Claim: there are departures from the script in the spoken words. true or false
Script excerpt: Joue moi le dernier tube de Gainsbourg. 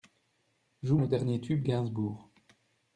true